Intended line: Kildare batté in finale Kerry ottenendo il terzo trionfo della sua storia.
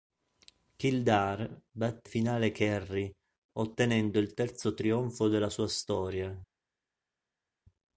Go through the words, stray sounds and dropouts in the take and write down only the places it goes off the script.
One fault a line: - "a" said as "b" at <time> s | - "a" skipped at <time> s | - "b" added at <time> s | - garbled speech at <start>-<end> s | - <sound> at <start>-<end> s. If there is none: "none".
- "in" skipped at 2.1 s